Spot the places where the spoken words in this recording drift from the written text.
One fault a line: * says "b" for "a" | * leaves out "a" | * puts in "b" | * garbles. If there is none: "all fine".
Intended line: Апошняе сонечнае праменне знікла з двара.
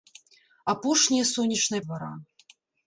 * leaves out "праменне знікла з"